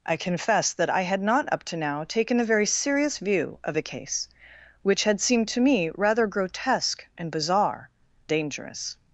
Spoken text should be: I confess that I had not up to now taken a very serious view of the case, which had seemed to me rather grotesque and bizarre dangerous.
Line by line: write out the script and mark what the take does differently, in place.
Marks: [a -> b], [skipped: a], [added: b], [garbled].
I confess that I had not up to now taken a very serious view of the case, which had seemed to me rather grotesque and bizarre dangerous.